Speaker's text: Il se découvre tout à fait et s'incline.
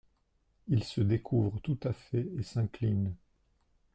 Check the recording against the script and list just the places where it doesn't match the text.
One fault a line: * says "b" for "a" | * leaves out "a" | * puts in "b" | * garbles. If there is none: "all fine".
all fine